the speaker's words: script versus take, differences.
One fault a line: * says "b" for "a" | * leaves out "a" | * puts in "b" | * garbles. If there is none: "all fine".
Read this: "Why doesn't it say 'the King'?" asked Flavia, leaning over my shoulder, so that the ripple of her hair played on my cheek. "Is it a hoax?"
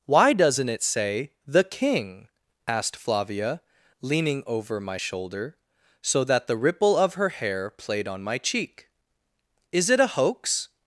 all fine